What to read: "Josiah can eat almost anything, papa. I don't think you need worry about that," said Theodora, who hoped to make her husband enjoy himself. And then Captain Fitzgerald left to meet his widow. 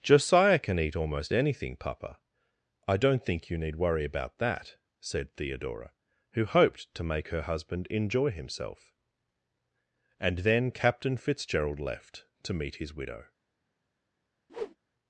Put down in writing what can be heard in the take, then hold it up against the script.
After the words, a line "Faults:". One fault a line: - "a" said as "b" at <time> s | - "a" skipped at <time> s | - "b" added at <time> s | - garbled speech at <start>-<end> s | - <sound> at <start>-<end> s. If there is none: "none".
"Josiah can eat almost anything, papa. I don't think you need worry about that," said Theodora, who hoped to make her husband enjoy himself. And then Captain Fitzgerald left to meet his widow.
Faults:
- whoosh at 14.5-14.8 s